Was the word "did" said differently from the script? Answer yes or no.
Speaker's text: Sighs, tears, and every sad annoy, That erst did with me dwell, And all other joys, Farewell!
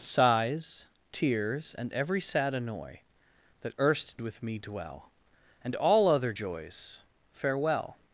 yes